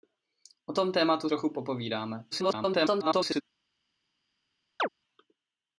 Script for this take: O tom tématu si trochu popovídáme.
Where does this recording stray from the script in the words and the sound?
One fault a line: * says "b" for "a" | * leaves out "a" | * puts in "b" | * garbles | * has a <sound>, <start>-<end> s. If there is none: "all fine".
* leaves out "si"
* garbles
* has a chirp, 4.8-4.9 s